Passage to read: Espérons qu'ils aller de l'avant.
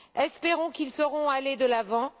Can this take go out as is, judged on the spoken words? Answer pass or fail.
fail